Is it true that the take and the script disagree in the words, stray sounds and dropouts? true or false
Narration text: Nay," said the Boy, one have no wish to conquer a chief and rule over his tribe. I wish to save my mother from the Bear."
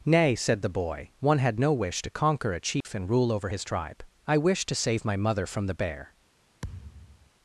true